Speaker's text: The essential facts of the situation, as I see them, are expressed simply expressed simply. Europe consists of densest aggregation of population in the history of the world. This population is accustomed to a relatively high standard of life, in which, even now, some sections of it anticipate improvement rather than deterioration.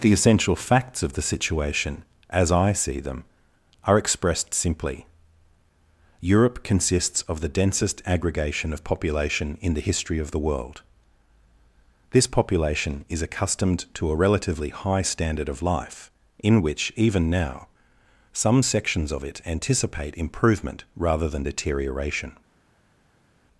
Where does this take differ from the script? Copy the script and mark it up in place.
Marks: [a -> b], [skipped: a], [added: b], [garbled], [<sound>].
The essential facts of the situation, as I see them, are expressed simply [skipped: expressed simply.] Europe consists of [added: the] densest aggregation of population in the history of the world. This population is accustomed to a relatively high standard of life, in which, even now, some sections of it anticipate improvement rather than deterioration.